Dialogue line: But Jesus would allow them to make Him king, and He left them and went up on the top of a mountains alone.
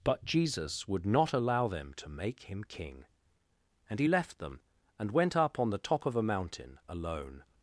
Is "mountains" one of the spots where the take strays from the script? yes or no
yes